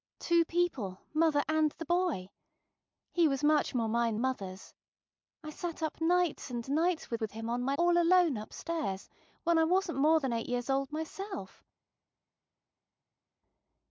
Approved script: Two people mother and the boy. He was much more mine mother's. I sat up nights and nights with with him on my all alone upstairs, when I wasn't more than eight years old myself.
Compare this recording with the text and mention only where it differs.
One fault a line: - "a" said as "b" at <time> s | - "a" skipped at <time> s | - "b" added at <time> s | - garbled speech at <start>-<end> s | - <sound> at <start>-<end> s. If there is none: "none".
none